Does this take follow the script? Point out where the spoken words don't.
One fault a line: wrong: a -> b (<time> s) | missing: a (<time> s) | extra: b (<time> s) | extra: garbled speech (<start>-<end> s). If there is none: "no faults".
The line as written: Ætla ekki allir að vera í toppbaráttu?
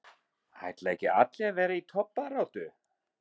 no faults